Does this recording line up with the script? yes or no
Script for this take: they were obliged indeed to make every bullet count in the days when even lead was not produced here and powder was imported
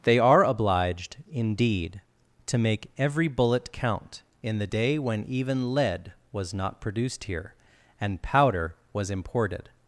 no